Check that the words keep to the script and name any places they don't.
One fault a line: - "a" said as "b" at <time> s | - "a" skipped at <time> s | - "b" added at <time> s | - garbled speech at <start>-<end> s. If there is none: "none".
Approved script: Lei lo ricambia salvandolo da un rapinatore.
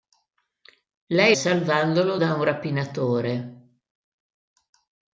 - "lo ricambia" skipped at 1.4 s